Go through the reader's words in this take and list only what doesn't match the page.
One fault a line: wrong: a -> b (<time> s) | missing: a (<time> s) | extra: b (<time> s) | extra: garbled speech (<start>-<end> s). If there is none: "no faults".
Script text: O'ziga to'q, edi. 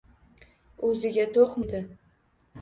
no faults